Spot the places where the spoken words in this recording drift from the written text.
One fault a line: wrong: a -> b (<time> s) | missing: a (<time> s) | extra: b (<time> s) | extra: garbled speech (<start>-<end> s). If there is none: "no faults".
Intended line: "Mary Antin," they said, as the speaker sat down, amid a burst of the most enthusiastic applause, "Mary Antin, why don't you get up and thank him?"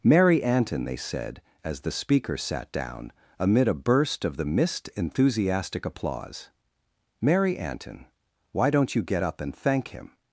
wrong: most -> mist (4.5 s)